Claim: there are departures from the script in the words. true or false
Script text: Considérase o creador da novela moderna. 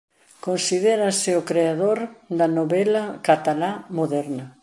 true